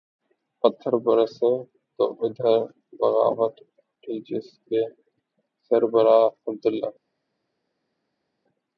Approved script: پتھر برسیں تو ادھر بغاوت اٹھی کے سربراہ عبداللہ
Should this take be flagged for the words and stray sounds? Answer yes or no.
yes